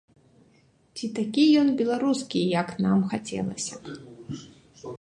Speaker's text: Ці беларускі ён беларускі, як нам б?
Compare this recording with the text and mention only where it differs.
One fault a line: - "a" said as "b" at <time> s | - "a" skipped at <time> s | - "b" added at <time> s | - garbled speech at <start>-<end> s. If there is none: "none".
- "беларускі" said as "такі" at 1.2 s
- "хацелася" added at 3.1 s